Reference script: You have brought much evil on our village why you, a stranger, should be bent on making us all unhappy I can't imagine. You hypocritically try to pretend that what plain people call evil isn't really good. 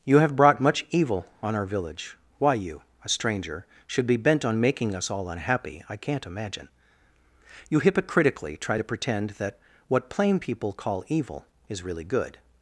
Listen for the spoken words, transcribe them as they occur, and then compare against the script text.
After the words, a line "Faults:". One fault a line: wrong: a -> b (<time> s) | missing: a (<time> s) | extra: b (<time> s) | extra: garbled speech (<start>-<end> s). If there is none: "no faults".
You have brought much evil on our village why you, a stranger, should be bent on making us all unhappy I can't imagine. You hypocritically try to pretend that what plain people call evil is really good.
Faults:
wrong: isn't -> is (11.7 s)